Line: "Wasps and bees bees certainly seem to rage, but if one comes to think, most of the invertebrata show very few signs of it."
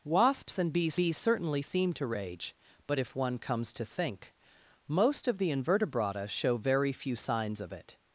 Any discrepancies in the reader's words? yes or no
no